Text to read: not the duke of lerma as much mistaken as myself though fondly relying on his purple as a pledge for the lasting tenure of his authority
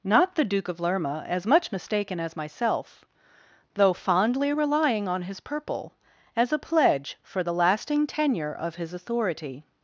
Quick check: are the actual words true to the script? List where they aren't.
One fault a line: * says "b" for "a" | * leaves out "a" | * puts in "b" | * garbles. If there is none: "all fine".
all fine